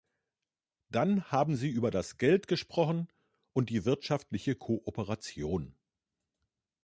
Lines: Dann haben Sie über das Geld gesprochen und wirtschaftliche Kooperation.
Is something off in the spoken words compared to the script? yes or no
yes